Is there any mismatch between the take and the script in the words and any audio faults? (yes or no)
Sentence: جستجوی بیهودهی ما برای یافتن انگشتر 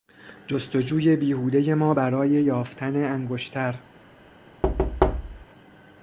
yes